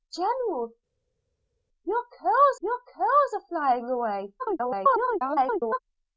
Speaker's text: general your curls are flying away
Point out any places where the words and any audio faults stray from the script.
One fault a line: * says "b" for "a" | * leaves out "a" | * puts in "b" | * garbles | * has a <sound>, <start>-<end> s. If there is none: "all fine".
* puts in "your curls"
* garbles